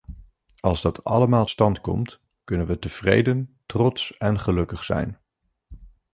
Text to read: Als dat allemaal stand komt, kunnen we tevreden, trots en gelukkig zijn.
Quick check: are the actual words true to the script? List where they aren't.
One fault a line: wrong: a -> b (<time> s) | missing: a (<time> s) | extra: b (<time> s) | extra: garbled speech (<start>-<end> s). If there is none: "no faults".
no faults